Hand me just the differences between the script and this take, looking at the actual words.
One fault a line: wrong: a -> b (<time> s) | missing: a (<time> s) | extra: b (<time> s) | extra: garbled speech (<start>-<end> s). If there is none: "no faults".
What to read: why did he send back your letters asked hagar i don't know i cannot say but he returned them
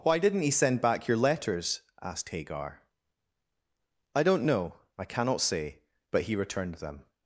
wrong: did -> didn't (0.2 s)